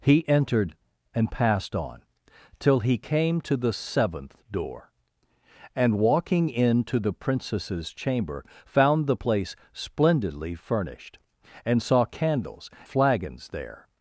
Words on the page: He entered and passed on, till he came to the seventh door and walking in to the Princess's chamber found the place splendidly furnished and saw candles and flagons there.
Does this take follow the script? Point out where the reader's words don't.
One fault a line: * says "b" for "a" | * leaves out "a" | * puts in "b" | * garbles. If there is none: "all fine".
* leaves out "and"